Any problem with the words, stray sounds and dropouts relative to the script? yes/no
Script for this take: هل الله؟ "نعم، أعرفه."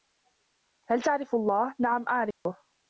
yes